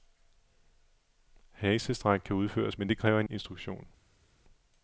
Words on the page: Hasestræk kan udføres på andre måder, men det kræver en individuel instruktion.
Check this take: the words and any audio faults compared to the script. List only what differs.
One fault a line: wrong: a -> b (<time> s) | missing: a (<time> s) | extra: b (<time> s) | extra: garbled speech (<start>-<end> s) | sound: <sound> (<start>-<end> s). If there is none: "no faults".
missing: på andre måder (2.8 s)
missing: individuel (3.3 s)